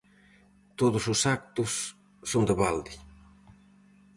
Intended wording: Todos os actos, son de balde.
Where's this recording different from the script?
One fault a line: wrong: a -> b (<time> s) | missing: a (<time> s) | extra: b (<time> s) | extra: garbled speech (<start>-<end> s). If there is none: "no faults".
no faults